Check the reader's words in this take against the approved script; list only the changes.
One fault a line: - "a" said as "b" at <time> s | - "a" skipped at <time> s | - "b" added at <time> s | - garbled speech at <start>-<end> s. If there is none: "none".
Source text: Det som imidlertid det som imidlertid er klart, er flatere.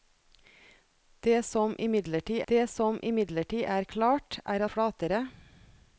none